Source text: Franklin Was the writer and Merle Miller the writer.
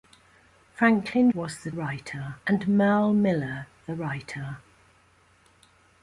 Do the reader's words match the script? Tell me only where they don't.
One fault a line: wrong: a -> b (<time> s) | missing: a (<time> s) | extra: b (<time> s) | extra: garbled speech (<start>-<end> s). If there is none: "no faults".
no faults